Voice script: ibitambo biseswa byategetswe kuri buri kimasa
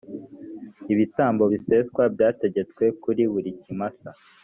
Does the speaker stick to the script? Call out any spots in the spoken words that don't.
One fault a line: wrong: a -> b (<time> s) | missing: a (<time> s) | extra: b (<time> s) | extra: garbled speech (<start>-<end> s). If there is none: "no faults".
no faults